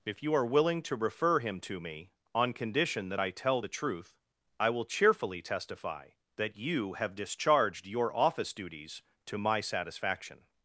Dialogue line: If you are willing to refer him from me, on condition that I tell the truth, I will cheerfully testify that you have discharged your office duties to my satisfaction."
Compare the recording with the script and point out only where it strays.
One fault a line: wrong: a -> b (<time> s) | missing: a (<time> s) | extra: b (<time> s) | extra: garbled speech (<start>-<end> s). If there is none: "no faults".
wrong: from -> to (1.6 s)